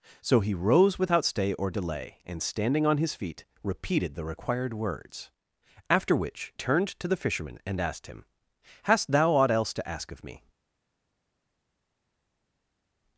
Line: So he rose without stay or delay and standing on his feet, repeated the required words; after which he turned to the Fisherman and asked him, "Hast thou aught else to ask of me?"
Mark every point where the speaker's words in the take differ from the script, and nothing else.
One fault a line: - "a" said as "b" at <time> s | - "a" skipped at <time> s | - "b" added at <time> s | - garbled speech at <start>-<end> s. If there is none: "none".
- "he" skipped at 6.5 s